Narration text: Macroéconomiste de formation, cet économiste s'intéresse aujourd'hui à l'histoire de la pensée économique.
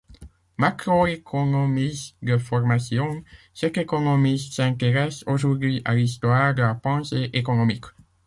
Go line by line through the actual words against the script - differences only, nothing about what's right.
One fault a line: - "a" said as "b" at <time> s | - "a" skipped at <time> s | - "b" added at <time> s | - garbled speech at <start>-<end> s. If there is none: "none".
none